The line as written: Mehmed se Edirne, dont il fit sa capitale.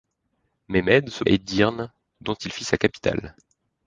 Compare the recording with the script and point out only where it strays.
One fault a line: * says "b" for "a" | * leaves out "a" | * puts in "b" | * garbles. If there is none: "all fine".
all fine